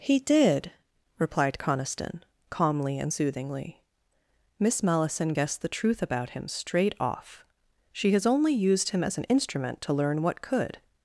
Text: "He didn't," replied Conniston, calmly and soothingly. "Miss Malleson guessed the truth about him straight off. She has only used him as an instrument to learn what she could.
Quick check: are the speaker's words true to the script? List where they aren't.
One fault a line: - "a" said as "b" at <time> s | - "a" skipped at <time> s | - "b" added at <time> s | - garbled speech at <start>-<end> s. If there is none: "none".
- "didn't" said as "did" at 0.2 s
- "she" skipped at 10.4 s